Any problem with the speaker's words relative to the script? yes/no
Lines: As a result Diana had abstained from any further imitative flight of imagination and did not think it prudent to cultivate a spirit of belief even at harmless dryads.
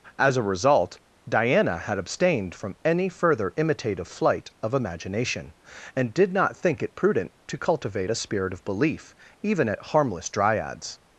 no